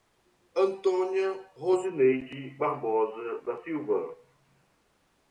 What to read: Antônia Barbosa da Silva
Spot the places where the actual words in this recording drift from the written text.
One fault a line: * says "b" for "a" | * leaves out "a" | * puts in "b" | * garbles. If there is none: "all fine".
* puts in "Rosineide"